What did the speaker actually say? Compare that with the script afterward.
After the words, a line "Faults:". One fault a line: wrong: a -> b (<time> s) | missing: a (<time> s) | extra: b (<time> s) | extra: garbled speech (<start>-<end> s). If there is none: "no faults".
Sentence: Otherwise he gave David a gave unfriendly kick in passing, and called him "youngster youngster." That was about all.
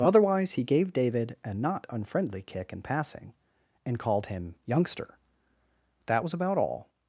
Otherwise he gave David a not unfriendly kick in passing, and called him "youngster." That was about all.
Faults:
wrong: gave -> not (1.5 s)
missing: youngster (5.2 s)